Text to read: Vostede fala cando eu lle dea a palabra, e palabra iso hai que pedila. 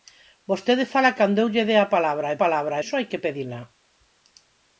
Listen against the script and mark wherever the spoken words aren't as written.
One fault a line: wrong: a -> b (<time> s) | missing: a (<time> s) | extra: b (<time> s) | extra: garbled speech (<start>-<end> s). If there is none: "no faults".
no faults